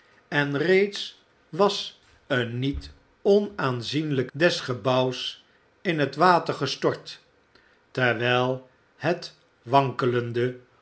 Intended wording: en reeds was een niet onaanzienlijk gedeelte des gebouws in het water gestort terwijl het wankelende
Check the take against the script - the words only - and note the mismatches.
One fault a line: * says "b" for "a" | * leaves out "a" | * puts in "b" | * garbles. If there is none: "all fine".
* leaves out "gedeelte"